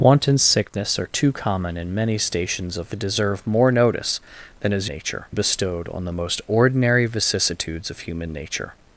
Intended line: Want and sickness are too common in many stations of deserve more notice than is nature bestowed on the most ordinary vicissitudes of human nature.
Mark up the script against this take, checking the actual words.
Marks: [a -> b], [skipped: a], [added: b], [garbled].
Want and sickness are too common in many stations of deserve more notice than is nature bestowed on the most ordinary vicissitudes of human nature.